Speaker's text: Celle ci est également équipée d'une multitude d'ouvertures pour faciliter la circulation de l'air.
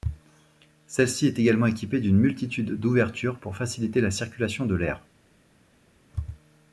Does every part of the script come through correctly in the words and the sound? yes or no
yes